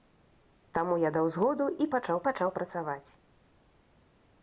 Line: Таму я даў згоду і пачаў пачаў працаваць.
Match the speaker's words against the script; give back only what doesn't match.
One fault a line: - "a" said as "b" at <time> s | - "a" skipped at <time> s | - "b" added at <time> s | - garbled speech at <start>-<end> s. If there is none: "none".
none